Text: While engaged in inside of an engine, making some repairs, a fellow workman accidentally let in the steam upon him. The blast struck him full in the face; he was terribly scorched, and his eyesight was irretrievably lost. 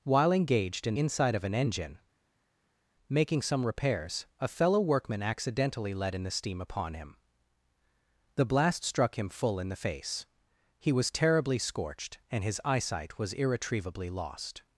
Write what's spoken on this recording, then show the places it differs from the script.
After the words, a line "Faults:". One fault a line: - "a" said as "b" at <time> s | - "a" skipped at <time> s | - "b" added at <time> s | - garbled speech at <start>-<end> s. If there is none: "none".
While engaged in inside of an engine, making some repairs, a fellow workman accidentally let in the steam upon him. The blast struck him full in the face; he was terribly scorched, and his eyesight was irretrievably lost.
Faults:
none